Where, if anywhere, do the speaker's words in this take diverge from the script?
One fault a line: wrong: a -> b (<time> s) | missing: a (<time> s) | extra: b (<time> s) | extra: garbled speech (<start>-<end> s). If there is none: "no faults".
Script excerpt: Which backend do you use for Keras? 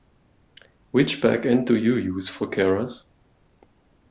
no faults